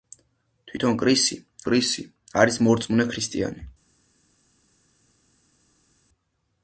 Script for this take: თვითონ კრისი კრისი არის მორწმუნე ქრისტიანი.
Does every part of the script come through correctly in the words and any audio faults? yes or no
yes